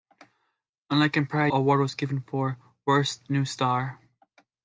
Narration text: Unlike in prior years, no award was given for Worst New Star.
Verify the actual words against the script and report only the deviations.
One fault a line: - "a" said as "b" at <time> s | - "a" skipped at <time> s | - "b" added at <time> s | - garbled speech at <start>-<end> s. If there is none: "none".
- "years no" skipped at 1.5 s